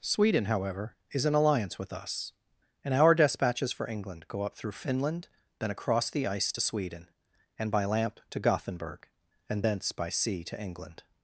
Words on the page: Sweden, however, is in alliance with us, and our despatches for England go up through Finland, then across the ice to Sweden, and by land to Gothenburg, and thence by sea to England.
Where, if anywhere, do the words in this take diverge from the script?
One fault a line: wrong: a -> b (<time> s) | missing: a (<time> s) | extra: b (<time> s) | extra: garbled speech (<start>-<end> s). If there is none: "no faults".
wrong: land -> lamp (7.8 s)